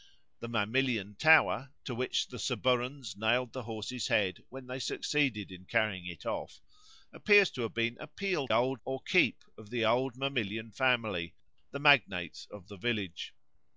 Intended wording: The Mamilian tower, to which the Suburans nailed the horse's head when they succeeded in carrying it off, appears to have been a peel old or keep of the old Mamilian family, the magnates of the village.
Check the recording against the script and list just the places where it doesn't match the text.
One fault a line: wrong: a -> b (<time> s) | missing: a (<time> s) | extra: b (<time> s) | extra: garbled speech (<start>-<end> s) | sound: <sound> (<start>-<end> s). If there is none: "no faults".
no faults